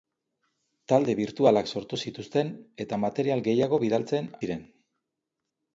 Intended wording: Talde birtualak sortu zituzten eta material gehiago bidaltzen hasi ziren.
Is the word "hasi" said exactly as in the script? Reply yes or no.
no